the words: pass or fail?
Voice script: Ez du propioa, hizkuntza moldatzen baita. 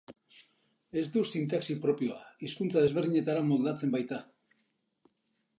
fail